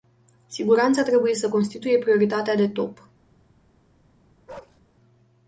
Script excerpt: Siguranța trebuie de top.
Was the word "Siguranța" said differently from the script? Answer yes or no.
no